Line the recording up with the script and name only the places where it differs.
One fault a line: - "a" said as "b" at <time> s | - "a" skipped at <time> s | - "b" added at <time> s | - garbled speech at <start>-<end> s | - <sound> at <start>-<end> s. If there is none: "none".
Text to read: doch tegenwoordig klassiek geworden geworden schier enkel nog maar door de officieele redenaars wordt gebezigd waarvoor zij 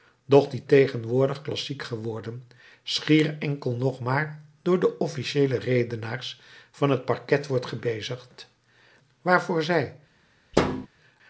- "die" added at 0.5 s
- "geworden" skipped at 2.5 s
- "van het parket" added at 6.7 s
- thud at 10.5-10.9 s